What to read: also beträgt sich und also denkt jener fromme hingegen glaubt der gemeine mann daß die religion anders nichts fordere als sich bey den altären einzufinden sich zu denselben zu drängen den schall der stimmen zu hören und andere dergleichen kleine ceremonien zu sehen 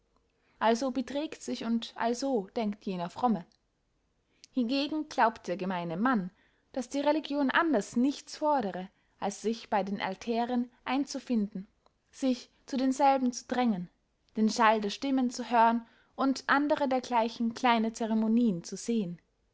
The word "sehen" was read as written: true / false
true